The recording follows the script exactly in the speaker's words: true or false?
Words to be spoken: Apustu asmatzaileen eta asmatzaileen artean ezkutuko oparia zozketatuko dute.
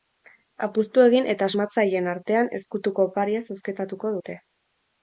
false